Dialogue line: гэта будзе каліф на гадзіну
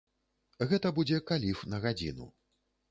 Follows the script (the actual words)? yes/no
yes